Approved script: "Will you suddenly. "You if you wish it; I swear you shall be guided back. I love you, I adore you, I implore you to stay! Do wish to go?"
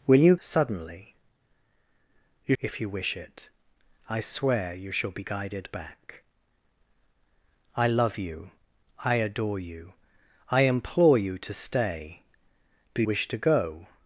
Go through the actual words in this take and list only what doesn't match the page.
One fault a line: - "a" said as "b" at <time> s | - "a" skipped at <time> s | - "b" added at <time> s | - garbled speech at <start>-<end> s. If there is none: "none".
none